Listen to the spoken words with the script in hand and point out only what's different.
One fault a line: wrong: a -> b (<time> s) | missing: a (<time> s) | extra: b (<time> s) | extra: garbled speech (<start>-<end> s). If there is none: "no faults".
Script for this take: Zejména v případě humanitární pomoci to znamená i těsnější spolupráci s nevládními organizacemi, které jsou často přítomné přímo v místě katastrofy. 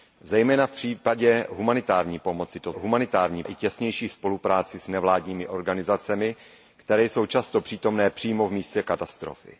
wrong: znamená -> humanitární (2.7 s)